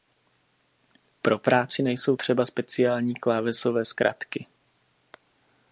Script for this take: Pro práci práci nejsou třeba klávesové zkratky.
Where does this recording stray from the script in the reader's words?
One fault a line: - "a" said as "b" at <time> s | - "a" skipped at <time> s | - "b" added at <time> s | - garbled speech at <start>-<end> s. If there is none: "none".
- "práci" skipped at 1.8 s
- "speciální" added at 2.4 s